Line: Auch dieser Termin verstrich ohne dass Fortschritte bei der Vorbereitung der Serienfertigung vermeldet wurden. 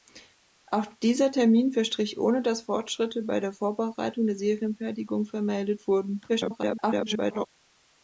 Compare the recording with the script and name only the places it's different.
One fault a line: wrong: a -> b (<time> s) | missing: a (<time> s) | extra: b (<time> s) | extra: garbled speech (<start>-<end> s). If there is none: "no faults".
extra: garbled speech (6.3-7.5 s)